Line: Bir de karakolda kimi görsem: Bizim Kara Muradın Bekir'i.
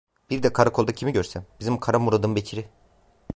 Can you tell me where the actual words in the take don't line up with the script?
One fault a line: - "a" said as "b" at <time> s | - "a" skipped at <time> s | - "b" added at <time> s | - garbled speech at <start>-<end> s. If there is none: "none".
none